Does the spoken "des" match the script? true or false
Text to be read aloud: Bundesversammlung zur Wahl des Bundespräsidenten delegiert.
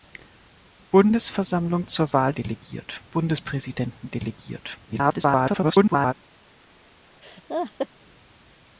false